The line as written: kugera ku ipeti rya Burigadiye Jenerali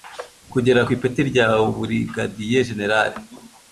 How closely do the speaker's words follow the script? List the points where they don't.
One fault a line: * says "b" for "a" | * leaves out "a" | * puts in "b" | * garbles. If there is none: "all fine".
all fine